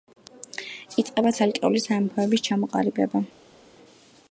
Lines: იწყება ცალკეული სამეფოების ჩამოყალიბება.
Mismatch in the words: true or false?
false